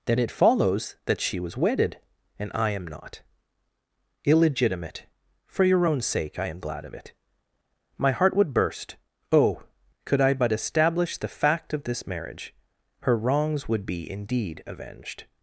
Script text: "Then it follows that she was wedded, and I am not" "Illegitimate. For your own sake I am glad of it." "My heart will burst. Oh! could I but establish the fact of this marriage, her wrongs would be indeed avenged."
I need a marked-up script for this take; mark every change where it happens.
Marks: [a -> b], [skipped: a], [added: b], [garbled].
"Then it follows that she was wedded, and I am not" "Illegitimate. For your own sake I am glad of it." "My heart [will -> would] burst. Oh! could I but establish the fact of this marriage, her wrongs would be indeed avenged."